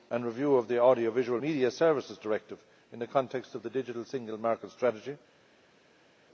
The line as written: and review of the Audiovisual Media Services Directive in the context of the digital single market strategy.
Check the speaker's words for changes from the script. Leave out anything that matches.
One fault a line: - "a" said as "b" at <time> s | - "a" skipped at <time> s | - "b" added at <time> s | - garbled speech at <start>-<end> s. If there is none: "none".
none